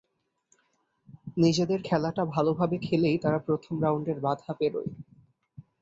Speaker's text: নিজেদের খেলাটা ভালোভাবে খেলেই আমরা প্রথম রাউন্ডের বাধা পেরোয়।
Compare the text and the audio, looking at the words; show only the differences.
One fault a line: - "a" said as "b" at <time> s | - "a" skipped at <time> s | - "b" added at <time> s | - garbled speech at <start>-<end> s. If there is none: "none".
- "আমরা" said as "তারা" at 3.2 s